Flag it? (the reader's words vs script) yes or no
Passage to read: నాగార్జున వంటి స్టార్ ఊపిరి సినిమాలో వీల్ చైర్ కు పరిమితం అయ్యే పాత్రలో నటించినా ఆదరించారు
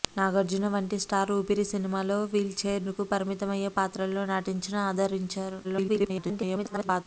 yes